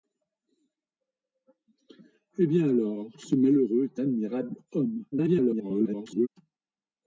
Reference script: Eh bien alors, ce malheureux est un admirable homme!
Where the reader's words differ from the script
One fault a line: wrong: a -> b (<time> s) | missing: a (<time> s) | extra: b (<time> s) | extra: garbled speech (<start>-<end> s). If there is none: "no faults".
missing: un (4.0 s)
extra: garbled speech (5.1-6.3 s)